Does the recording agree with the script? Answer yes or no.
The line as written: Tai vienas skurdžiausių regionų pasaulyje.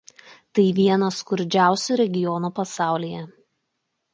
yes